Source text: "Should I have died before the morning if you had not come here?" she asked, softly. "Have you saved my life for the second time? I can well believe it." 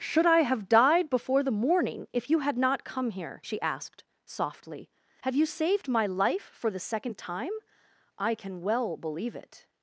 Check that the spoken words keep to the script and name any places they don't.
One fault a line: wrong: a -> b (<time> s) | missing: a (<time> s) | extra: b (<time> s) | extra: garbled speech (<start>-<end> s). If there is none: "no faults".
no faults